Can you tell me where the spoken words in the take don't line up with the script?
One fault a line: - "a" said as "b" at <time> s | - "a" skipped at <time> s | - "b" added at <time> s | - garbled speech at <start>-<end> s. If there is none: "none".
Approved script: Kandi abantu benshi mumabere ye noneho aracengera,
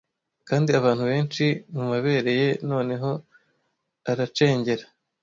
none